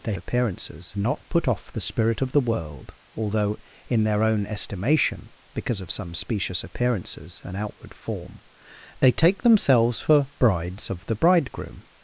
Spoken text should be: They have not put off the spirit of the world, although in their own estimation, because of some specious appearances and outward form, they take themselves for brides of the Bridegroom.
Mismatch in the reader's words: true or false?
true